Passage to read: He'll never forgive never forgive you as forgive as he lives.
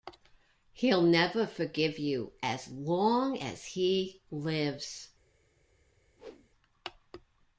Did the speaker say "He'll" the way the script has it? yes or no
yes